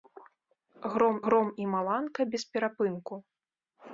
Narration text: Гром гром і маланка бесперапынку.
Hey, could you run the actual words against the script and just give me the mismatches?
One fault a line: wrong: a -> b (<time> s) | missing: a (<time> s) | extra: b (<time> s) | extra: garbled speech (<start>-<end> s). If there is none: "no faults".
no faults